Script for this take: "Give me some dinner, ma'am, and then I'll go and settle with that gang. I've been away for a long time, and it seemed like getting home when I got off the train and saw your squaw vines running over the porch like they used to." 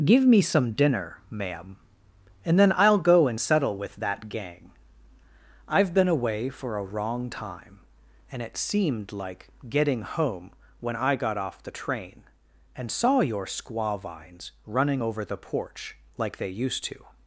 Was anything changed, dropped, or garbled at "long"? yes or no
yes